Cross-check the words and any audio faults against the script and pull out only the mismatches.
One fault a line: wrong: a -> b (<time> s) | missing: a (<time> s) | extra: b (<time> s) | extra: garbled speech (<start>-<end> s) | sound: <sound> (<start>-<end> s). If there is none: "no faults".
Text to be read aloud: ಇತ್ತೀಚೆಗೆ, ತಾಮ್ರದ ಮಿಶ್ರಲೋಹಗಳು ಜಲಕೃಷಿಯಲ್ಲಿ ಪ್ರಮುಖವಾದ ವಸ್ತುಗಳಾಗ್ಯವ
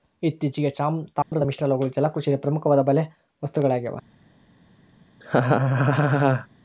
sound: dropout (1.2-1.3 s)
extra: ಬಲೆ (2.8 s)
sound: laugh (5.2-6.5 s)